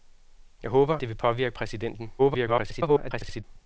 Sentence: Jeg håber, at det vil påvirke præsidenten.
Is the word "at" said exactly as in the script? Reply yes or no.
no